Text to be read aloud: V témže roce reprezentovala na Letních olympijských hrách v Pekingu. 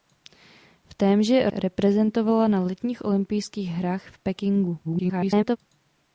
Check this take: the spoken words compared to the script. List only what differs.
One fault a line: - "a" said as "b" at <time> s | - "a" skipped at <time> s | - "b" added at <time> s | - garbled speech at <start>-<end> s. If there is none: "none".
- "roce" skipped at 1.5 s
- garbled speech at 4.8-5.6 s